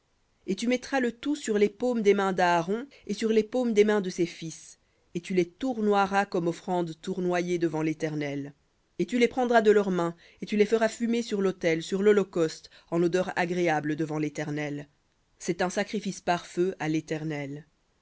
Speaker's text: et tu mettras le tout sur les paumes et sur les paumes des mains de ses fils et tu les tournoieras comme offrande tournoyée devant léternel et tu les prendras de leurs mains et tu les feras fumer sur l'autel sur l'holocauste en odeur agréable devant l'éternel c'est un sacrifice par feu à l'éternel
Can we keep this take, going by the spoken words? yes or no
no